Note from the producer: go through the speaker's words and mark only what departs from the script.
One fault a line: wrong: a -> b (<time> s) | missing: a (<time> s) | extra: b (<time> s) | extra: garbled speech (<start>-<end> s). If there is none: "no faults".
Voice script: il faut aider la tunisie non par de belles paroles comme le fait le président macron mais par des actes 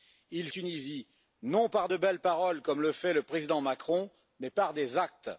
missing: faut aider la (0.5 s)